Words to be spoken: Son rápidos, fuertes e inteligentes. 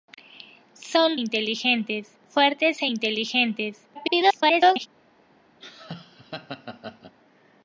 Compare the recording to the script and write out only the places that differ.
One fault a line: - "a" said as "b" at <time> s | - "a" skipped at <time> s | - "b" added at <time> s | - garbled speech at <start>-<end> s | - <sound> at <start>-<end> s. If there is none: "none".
- "rápidos" said as "inteligentes" at 1.1 s
- garbled speech at 3.9-4.9 s
- laugh at 5.6-7.2 s